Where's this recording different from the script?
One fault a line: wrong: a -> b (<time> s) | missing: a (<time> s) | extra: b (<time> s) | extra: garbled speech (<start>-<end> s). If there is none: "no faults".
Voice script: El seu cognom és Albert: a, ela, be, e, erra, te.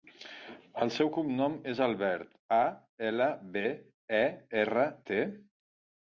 no faults